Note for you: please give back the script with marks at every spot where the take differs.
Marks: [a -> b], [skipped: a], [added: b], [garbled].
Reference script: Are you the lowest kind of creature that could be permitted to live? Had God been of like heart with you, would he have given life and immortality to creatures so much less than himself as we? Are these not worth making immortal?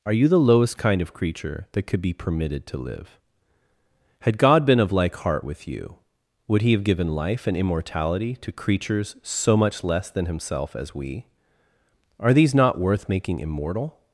Are you the lowest kind of creature that could be permitted to live? Had God been of like heart with you, would he have given life and immortality to creatures so much less than himself as we? Are these not worth making immortal?